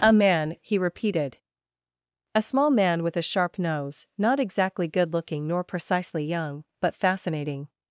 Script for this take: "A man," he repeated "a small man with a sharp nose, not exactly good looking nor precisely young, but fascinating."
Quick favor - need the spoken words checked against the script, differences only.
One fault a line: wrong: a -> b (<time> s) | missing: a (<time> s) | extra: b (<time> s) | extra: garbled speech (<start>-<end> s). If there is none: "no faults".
no faults